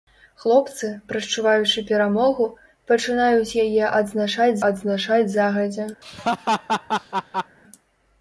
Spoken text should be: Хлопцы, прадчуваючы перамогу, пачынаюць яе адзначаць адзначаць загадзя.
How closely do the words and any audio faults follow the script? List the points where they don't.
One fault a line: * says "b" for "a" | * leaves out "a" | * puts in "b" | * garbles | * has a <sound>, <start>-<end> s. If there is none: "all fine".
* has a laugh, 6.0-7.6 s